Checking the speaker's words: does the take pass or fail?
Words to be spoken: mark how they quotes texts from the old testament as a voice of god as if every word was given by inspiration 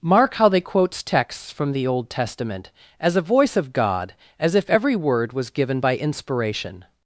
pass